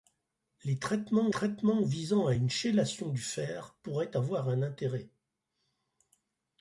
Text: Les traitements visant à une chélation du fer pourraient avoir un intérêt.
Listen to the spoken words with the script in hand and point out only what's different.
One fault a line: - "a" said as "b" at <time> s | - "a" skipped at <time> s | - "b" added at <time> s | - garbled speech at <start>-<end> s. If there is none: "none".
- "traitements" added at 1.3 s